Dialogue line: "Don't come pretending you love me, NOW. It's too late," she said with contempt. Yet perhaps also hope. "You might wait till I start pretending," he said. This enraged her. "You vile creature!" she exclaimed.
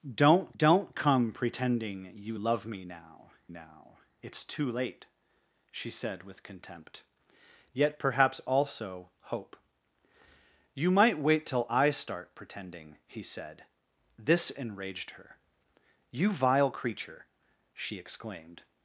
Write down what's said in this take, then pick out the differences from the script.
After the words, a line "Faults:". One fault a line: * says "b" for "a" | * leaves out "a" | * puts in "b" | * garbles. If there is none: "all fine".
"Don't don't come pretending you love me, NOW NOW. It's too late," she said with contempt. Yet perhaps also hope. "You might wait till I start pretending," he said. This enraged her. "You vile creature!" she exclaimed.
Faults:
* puts in "don't"
* puts in "NOW"